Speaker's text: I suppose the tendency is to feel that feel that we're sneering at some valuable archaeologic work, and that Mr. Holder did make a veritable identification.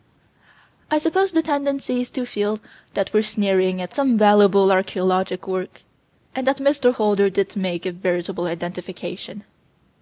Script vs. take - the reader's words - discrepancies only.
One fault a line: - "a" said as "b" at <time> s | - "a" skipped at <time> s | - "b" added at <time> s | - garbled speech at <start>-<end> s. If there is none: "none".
- "feel that" skipped at 3.1 s